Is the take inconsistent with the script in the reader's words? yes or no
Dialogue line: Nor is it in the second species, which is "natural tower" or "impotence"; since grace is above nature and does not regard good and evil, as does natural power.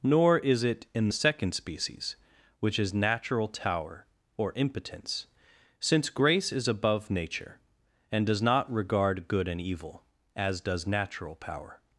no